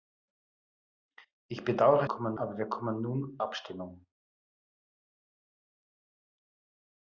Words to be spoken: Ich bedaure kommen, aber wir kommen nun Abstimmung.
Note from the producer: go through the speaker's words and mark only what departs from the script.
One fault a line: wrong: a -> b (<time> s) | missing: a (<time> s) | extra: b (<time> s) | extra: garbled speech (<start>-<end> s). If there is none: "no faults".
no faults